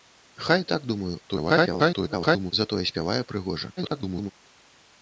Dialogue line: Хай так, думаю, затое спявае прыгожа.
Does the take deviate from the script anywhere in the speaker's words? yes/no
yes